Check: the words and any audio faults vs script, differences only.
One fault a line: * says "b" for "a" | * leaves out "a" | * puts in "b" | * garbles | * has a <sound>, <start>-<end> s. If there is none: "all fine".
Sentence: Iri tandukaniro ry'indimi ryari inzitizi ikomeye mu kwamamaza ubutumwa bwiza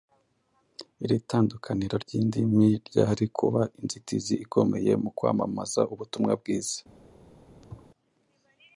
* puts in "kuba"
* has a thud, 7.6-7.9 s